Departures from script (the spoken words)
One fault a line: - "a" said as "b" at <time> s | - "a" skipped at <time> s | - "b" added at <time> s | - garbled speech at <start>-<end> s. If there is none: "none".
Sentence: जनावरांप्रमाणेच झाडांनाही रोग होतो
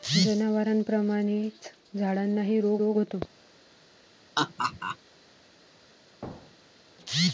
- "रोग" added at 2.8 s